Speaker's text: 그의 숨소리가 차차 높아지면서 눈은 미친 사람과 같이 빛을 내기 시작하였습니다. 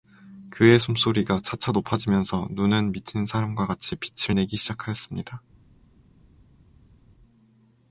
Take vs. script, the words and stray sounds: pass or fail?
pass